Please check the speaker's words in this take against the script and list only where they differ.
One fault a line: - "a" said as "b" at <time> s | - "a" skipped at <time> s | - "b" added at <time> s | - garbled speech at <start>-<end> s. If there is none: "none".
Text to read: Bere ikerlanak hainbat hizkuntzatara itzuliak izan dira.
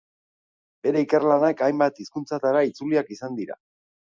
none